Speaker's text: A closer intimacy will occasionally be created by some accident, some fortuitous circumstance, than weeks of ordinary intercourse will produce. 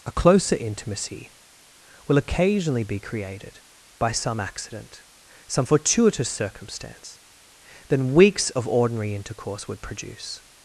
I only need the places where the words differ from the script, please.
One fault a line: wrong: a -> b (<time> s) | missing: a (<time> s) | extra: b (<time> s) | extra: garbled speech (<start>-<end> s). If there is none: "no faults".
wrong: will -> would (9.7 s)